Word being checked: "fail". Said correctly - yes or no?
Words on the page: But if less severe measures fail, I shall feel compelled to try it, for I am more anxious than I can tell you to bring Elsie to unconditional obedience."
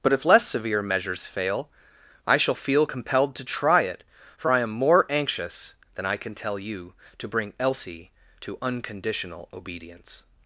yes